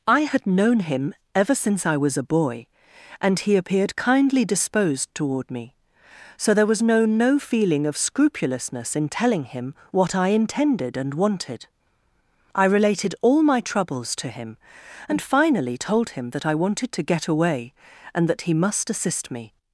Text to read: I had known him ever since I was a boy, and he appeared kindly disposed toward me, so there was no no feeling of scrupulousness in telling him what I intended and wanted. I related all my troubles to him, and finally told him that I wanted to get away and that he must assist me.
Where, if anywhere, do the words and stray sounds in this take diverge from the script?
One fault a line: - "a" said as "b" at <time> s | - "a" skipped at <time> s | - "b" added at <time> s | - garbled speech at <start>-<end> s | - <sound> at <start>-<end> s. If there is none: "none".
none